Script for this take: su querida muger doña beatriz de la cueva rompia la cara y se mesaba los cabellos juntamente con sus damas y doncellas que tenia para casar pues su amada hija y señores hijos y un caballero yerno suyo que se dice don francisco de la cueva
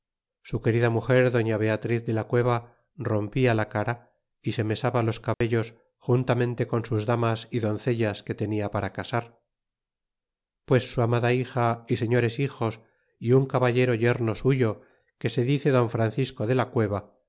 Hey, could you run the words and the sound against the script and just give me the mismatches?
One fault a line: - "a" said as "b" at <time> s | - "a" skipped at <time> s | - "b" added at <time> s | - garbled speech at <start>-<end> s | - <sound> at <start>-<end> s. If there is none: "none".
- dropout at 5.3-5.4 s